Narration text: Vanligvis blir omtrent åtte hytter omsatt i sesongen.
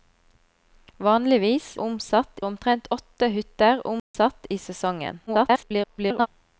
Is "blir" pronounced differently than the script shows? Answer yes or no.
yes